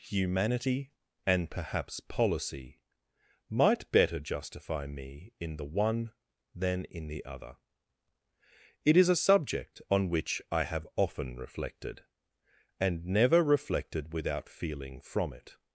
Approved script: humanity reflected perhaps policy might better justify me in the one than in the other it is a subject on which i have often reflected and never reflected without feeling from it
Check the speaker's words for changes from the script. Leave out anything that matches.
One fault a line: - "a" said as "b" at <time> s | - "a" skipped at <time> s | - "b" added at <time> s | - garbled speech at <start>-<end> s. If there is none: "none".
- "reflected" said as "and" at 1.3 s